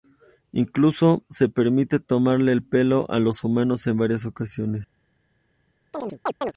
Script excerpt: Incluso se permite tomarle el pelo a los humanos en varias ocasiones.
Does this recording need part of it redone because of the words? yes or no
no